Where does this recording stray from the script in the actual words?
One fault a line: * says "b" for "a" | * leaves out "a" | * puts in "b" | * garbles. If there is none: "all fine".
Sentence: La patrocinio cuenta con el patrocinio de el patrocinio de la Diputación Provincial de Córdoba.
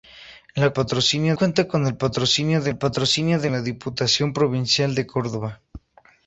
all fine